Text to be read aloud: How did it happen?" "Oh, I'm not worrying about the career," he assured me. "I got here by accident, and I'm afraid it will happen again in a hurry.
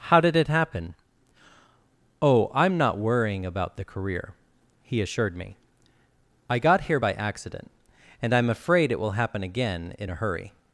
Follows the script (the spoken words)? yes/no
yes